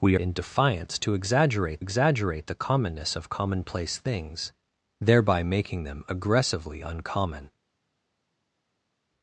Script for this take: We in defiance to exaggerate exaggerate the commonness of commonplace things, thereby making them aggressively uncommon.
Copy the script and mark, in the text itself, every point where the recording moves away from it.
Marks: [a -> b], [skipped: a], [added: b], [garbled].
We in defiance to exaggerate exaggerate the commonness of commonplace things, thereby making them aggressively uncommon.